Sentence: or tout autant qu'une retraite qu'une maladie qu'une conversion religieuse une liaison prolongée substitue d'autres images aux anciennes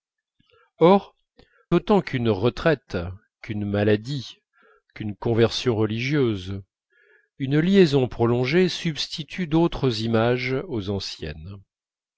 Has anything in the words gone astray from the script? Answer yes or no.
yes